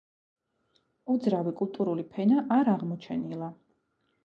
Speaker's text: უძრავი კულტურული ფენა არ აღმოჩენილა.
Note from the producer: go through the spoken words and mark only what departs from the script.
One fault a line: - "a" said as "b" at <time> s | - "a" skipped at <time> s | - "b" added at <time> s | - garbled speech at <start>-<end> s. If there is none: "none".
none